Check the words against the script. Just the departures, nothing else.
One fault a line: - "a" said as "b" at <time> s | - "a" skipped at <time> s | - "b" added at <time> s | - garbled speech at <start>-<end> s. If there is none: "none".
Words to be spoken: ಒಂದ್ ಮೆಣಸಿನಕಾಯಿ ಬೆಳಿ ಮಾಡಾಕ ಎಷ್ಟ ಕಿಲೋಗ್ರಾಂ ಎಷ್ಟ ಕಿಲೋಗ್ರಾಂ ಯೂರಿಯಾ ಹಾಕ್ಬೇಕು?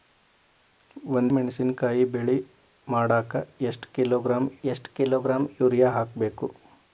none